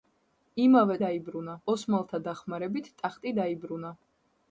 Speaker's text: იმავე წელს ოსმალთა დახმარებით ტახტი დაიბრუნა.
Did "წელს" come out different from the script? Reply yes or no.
yes